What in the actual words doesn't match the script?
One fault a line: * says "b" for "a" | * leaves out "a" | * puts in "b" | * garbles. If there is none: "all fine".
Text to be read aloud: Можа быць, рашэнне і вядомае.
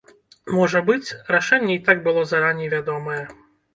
* puts in "так было зараней"